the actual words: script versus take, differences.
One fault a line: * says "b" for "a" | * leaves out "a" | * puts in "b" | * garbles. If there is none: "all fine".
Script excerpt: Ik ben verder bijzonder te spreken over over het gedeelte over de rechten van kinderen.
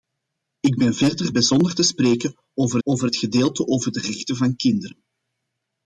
all fine